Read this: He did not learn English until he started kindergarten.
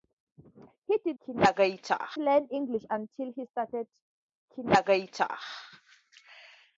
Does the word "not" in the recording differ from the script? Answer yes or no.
yes